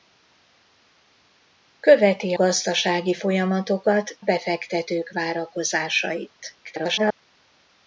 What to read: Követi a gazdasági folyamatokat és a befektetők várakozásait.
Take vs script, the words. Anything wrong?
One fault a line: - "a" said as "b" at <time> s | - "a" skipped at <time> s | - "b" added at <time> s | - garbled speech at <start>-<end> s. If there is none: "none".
- "a" skipped at 2.4 s
- "és a" skipped at 4.2 s
- garbled speech at 6.6-7.2 s